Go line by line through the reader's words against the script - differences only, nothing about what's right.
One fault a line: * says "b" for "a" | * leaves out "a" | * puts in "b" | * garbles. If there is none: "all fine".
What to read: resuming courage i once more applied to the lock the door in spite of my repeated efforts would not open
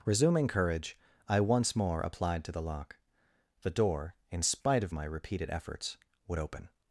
* leaves out "not"